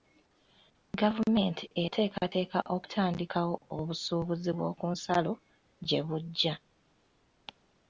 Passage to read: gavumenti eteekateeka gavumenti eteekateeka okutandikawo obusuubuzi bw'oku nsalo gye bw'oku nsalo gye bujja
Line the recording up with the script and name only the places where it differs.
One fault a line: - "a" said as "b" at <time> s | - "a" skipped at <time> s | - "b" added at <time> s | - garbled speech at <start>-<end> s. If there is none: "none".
- "gavumenti eteekateeka" skipped at 2.6 s
- "bw'oku nsalo gye" skipped at 6.0 s